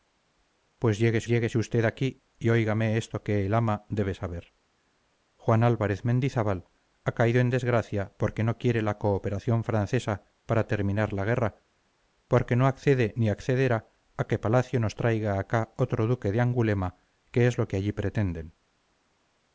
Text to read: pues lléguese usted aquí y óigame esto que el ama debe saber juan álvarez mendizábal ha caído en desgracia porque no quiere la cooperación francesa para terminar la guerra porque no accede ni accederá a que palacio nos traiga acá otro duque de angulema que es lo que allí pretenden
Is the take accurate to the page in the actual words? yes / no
no